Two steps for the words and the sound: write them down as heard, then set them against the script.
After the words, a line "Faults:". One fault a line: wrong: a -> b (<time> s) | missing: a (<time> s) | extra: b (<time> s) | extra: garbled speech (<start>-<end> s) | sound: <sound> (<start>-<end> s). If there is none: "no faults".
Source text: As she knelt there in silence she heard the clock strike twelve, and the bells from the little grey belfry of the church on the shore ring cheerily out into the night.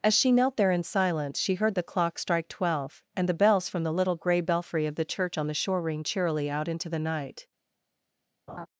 As she knelt there in silence she heard the clock strike twelve, and the bells from the little grey belfry of the church on the shore ring cheerily out into the night.
Faults:
sound: laugh (8.5-8.7 s)